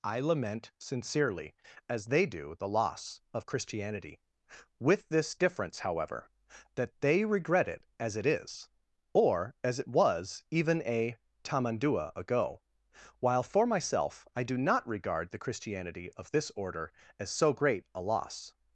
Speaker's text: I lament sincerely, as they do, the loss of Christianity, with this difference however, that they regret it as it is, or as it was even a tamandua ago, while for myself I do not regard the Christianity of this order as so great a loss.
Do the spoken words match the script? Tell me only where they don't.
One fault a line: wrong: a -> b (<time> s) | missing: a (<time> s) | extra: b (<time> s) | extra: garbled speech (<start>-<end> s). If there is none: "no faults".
no faults